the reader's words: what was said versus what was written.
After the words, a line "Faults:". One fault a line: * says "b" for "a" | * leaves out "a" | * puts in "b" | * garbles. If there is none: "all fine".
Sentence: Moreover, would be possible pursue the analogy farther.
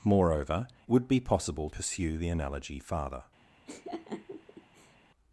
Moreover, would be possible pursue the analogy farther.
Faults:
all fine